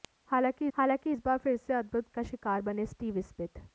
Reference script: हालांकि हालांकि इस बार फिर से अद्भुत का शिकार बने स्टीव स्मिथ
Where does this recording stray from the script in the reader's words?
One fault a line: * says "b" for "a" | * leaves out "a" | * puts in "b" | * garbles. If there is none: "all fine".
all fine